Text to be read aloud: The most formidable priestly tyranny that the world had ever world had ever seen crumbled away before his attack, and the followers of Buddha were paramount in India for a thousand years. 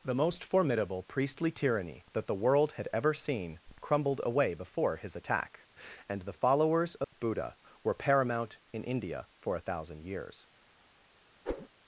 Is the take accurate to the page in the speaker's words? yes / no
no